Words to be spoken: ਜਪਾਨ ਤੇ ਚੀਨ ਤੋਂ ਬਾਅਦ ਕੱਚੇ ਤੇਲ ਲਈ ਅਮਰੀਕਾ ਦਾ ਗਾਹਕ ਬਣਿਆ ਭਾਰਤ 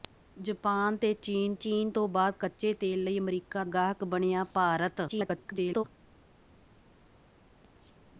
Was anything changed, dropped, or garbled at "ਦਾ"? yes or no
yes